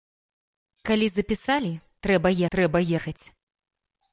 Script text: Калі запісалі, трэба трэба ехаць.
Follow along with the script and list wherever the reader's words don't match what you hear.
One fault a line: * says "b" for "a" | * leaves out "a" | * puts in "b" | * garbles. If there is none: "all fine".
all fine